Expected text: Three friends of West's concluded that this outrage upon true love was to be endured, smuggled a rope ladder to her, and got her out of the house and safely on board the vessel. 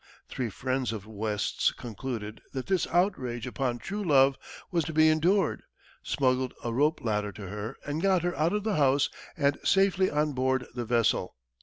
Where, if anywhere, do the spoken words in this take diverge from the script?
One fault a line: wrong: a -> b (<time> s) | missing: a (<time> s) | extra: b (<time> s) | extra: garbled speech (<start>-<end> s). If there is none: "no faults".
no faults